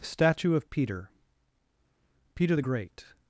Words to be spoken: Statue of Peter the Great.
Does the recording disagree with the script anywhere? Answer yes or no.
yes